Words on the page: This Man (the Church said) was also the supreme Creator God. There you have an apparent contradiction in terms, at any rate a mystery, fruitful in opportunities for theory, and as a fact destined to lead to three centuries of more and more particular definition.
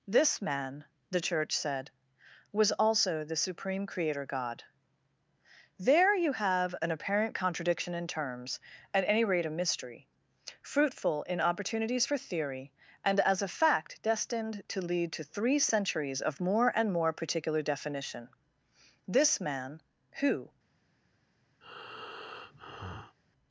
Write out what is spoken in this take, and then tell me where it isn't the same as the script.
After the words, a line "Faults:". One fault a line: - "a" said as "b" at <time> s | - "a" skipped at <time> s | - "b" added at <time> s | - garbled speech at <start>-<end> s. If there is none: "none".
This Man (the Church said) was also the supreme Creator God. There you have an apparent contradiction in terms, at any rate a mystery, fruitful in opportunities for theory, and as a fact destined to lead to three centuries of more and more particular definition. This Man, Who
Faults:
- "This Man Who" added at 19.1 s